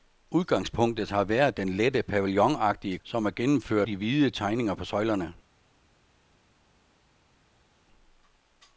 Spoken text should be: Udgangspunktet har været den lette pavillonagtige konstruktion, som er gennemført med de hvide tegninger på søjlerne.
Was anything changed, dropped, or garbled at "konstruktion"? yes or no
yes